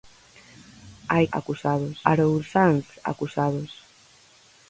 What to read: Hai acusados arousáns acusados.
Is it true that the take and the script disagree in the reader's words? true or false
false